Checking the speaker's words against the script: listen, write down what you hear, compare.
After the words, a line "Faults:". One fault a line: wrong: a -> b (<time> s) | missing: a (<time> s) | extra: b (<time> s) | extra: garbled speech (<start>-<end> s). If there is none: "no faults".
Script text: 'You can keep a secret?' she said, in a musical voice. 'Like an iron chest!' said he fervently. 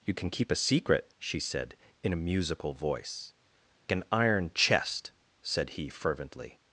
'You can keep a secret?' she said, in a musical voice. 'An iron chest!' said he fervently.
Faults:
missing: Like (3.3 s)